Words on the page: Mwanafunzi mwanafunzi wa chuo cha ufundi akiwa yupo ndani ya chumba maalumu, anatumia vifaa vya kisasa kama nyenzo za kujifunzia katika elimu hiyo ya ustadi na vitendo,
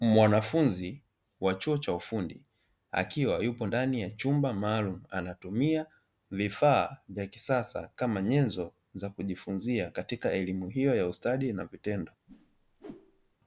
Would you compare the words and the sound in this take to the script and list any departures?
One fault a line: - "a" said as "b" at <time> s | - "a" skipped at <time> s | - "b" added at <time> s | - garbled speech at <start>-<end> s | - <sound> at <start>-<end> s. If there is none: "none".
- "mwanafunzi" skipped at 1.0 s
- whoosh at 12.3-13.4 s